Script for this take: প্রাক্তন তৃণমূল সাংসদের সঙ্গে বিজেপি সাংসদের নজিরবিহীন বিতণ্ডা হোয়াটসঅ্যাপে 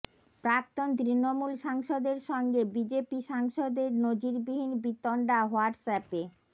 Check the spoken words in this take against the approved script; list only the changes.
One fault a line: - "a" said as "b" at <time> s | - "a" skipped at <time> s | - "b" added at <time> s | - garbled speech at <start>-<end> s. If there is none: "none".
none